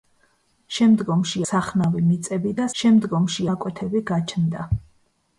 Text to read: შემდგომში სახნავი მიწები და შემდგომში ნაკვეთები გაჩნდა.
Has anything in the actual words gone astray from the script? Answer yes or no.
no